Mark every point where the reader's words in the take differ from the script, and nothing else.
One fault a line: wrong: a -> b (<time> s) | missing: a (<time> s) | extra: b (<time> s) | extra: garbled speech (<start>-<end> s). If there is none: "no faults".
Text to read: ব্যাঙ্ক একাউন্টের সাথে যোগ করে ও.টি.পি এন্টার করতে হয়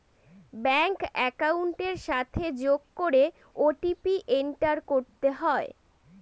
no faults